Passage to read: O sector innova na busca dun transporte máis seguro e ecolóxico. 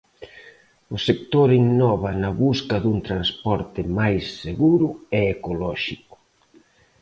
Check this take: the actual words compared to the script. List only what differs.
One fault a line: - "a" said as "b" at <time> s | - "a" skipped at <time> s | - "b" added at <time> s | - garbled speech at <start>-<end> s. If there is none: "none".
none